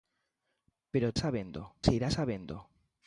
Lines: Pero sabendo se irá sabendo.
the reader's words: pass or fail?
pass